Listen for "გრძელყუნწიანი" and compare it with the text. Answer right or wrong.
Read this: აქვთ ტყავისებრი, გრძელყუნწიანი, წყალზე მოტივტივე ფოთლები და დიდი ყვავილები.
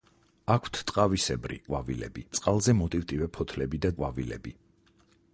wrong